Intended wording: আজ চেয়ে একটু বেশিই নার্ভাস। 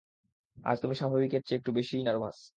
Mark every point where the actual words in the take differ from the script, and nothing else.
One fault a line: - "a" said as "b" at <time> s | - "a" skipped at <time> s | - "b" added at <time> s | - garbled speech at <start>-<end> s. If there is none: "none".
- "তুমি স্বাভাবিকের" added at 0.8 s